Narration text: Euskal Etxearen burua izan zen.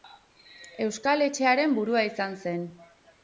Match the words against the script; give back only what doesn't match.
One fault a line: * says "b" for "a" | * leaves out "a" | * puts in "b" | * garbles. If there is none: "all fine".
all fine